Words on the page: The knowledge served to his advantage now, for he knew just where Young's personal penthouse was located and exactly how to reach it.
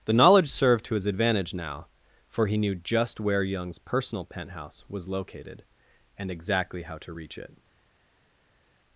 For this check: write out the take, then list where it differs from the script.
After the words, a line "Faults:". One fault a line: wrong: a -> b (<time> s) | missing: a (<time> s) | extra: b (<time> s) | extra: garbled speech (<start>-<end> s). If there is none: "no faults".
The knowledge served to his advantage now, for he knew just where Young's personal penthouse was located and exactly how to reach it.
Faults:
no faults